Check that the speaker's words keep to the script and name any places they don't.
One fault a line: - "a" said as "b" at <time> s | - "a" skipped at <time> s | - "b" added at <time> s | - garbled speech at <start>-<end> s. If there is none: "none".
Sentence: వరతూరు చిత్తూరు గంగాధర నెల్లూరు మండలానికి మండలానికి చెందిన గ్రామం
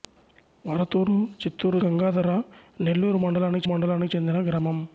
none